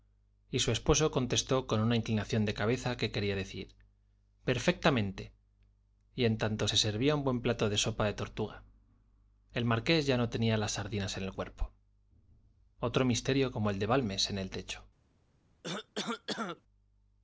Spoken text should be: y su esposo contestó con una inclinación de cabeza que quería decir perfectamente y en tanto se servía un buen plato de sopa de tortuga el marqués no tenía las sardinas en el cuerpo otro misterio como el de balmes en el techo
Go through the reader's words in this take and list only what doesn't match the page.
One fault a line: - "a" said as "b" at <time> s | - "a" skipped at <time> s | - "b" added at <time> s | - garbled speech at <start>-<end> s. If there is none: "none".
- "ya" added at 10.0 s